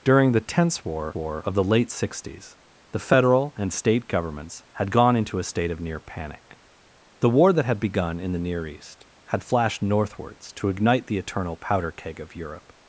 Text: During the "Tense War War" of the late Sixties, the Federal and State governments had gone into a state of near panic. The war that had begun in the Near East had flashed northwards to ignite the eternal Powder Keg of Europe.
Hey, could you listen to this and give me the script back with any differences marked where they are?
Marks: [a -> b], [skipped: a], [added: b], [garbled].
During the "Tense War War" of the late Sixties, the Federal and State governments had gone into a state of near panic. The war that had begun in the Near East had flashed northwards to ignite the eternal Powder Keg of Europe.